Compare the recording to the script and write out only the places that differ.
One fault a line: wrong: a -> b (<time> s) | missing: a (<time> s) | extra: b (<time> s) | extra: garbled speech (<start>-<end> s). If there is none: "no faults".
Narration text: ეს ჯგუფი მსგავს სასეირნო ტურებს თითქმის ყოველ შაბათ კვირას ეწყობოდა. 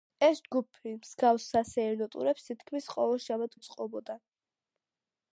missing: კვირას (3.5 s)